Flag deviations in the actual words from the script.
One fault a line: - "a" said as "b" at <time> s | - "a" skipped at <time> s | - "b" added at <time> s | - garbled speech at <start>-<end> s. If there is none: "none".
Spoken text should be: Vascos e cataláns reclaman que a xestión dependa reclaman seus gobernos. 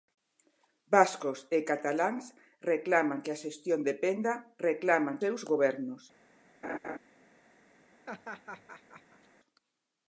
none